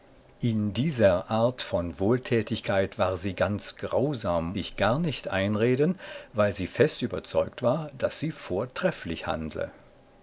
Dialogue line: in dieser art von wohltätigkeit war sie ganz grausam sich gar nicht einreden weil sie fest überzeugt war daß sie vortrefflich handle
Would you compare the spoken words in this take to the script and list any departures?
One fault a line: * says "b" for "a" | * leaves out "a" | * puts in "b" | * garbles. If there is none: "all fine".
all fine